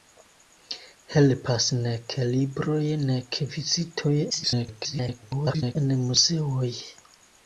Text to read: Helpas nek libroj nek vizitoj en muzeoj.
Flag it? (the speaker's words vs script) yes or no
yes